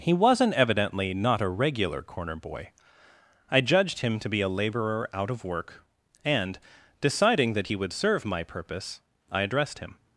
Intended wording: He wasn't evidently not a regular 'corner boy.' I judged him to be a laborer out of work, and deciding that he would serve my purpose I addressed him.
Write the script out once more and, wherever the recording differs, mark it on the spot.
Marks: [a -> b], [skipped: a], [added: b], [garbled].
He wasn't evidently not a regular 'corner boy.' I judged him to be a laborer out of work, and deciding that he would serve my purpose I addressed him.